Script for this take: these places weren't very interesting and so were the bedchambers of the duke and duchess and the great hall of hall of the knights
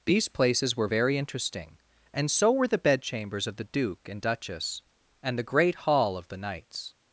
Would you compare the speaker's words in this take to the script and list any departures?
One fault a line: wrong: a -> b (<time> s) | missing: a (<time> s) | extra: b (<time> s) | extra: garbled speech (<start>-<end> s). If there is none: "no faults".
wrong: weren't -> were (0.8 s)
missing: hall of (6.3 s)